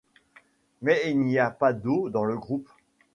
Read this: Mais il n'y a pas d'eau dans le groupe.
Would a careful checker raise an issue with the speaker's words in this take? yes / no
no